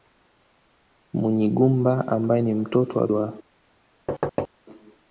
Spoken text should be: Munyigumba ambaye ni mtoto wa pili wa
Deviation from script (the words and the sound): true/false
true